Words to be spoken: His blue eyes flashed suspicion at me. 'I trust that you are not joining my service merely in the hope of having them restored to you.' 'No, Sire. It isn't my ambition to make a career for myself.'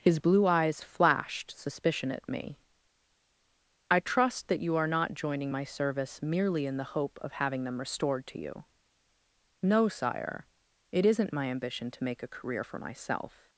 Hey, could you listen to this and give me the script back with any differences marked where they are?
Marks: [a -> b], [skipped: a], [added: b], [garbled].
His blue eyes flashed suspicion at me. 'I trust that you are not joining my service merely in the hope of having them restored to you.' 'No, Sire. It isn't my ambition to make a career for myself.'